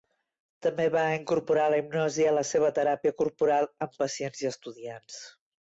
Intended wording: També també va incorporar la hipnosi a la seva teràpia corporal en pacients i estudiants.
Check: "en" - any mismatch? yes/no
yes